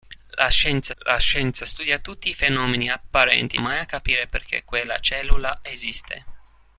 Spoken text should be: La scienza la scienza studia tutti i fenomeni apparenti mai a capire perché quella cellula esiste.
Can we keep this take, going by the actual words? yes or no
yes